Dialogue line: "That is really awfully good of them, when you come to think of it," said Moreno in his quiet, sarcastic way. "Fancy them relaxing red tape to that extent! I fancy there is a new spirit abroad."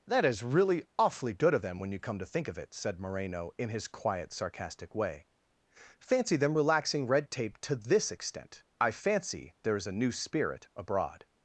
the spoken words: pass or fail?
fail